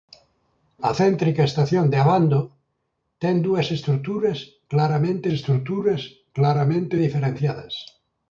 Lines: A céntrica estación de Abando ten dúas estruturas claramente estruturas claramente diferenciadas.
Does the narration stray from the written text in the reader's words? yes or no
no